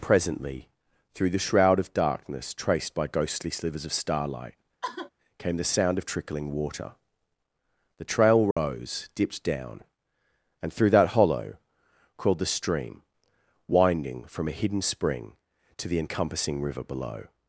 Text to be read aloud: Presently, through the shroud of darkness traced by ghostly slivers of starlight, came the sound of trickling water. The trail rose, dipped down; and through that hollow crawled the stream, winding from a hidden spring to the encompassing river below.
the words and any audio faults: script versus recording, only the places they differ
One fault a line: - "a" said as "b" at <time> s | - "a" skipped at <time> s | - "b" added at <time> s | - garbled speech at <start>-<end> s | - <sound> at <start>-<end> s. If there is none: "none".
- sigh at 4.8-5.1 s
- dropout at 8.5-8.6 s